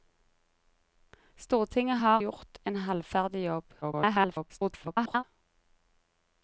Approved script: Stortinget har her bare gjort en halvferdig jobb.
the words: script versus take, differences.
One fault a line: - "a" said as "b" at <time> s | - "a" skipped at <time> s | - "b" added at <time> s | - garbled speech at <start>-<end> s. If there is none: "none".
- "her bare" skipped at 2.2 s
- garbled speech at 3.8-5.2 s